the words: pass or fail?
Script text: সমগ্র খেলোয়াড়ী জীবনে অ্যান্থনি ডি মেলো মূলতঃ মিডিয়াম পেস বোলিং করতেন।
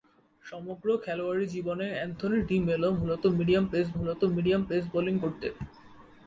fail